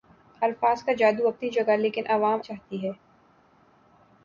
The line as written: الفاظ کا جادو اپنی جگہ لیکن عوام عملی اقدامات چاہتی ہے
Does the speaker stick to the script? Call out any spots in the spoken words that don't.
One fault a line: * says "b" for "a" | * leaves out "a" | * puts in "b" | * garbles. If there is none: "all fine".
* leaves out "عملی اقدامات"